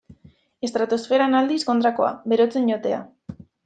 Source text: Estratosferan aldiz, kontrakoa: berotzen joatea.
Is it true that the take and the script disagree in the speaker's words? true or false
false